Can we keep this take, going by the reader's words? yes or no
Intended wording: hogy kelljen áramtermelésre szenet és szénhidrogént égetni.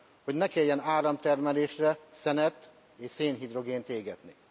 no